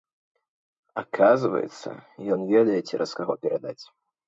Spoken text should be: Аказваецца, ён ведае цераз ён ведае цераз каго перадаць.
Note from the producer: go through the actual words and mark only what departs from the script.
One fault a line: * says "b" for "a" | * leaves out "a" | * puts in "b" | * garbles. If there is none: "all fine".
* leaves out "ён ведае цераз"